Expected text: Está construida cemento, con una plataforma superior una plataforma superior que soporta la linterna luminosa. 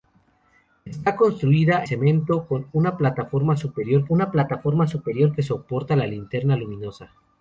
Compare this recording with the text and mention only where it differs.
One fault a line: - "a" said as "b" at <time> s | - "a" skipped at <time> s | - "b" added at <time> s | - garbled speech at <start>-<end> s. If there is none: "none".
none